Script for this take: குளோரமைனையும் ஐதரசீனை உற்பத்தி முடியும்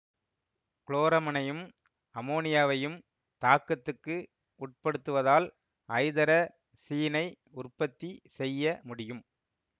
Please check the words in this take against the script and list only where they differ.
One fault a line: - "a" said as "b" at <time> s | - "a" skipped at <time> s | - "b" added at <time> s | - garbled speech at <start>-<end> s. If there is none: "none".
- "அமோனியாவையும் தாக்கத்துக்கு உட்படுத்துவதால்" added at 2.1 s
- "செய்ய" added at 8.4 s